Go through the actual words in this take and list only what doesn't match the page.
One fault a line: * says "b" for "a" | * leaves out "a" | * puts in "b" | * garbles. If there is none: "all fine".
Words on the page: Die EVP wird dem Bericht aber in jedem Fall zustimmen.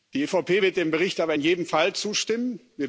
all fine